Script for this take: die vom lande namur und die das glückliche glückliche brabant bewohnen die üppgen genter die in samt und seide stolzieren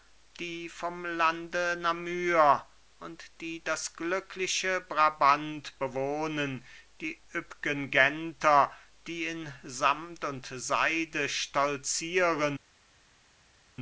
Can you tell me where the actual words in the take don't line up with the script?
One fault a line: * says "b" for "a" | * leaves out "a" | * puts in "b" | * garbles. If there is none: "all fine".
* leaves out "glückliche"